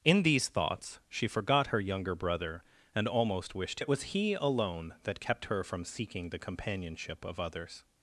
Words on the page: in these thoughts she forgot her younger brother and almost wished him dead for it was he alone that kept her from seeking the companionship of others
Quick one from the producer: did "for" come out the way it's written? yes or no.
no